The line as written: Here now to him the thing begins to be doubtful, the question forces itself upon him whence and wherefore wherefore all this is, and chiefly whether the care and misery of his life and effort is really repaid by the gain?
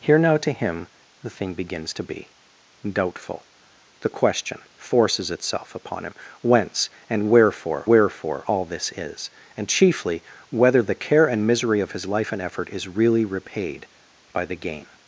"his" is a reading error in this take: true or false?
false